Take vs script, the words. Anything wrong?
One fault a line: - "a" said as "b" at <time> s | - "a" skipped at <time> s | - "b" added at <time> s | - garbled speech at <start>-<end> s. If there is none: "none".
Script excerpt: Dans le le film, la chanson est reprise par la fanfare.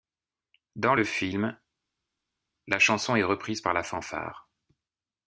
- "le" skipped at 1.0 s